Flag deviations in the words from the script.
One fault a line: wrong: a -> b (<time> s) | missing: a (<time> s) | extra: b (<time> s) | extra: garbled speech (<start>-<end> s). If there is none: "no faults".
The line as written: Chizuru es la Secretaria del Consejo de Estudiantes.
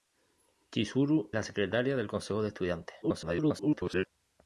missing: es (1.3 s)
extra: garbled speech (3.0-4.1 s)